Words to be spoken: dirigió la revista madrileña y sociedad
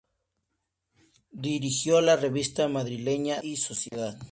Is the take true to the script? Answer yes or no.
yes